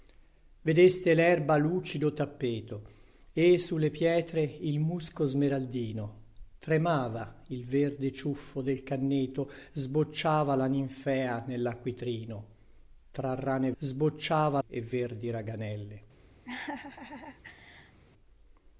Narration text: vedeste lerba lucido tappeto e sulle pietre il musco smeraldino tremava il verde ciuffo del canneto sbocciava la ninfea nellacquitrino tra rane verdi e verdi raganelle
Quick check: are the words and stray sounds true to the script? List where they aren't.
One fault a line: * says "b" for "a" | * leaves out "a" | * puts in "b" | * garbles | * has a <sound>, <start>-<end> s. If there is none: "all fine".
* says "sbocciava" for "verdi"
* has a laugh, 16.4-18.0 s